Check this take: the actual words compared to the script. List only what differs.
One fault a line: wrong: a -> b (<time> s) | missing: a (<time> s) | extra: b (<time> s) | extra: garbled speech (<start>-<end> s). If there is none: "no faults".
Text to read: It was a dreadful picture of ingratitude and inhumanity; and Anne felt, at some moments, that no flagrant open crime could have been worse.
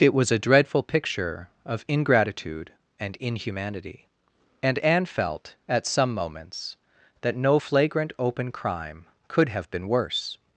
no faults